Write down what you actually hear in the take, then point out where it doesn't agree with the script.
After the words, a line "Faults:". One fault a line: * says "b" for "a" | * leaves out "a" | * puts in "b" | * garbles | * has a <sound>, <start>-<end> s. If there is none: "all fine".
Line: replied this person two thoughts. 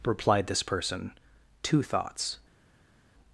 replied this person two thoughts.
Faults:
all fine